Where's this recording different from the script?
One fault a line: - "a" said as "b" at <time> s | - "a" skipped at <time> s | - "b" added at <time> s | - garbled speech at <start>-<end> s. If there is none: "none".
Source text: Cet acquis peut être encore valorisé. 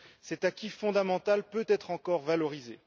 - "fondamental" added at 0.7 s